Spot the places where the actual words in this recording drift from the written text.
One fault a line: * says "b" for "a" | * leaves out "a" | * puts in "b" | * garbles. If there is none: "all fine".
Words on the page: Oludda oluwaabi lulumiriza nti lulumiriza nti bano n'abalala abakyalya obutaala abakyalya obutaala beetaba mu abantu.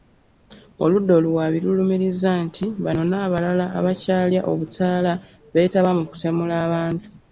* leaves out "lulumiriza nti"
* leaves out "abakyalya obutaala"
* puts in "kutemula"